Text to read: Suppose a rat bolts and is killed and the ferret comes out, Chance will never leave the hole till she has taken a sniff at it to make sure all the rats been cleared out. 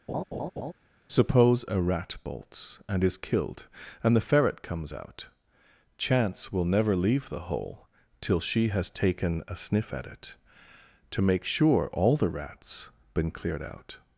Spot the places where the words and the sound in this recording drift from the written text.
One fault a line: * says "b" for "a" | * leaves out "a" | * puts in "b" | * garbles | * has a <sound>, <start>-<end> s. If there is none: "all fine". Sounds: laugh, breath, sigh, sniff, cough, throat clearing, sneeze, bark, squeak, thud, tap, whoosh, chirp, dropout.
* has a laugh, 0.1-0.7 s